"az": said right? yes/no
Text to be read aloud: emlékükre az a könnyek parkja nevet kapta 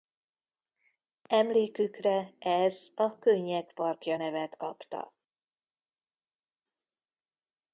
no